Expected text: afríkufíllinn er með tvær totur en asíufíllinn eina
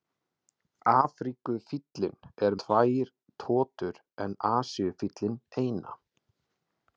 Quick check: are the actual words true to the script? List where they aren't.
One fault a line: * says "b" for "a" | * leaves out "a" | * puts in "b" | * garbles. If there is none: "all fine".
* leaves out "með"